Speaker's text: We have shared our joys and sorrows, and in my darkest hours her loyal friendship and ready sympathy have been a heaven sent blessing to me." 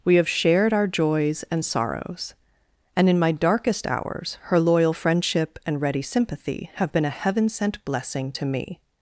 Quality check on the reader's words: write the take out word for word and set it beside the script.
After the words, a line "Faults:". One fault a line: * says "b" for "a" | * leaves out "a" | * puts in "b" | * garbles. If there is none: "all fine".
We have shared our joys and sorrows, and in my darkest hours her loyal friendship and ready sympathy have been a heaven sent blessing to me."
Faults:
all fine